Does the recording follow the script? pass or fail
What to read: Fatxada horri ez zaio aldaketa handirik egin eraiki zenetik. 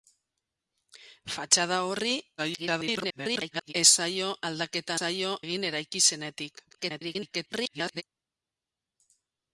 fail